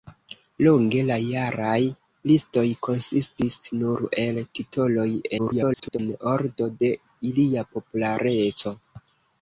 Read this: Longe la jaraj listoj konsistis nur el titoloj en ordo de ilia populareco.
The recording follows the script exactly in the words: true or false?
false